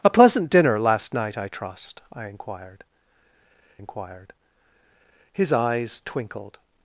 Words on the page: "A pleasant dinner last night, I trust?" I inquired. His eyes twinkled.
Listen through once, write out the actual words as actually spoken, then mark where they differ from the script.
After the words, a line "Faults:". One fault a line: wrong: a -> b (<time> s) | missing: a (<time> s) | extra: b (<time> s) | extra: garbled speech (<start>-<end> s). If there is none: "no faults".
"A pleasant dinner last night, I trust?" I inquired inquired. His eyes twinkled.
Faults:
extra: inquired (3.8 s)